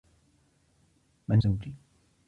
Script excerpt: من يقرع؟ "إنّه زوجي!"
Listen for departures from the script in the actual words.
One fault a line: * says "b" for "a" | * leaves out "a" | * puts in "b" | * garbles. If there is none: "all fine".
* leaves out "يقرع إنّه"